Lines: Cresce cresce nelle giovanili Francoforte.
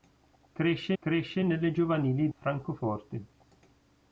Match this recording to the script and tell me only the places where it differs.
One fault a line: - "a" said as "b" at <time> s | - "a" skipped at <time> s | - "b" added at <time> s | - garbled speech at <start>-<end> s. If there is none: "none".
none